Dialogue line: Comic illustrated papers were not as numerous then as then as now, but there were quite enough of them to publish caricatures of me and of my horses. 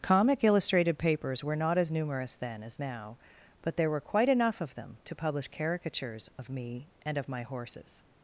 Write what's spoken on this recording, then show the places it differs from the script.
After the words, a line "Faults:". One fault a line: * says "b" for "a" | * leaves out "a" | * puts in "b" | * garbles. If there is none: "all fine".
Comic illustrated papers were not as numerous then as now, but there were quite enough of them to publish caricatures of me and of my horses.
Faults:
* leaves out "then as"